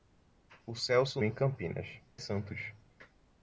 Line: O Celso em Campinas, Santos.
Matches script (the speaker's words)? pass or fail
pass